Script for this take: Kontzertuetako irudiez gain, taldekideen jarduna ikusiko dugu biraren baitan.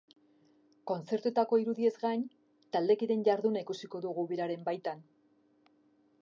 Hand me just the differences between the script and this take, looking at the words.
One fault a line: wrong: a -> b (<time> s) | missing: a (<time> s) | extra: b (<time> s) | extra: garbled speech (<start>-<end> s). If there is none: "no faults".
no faults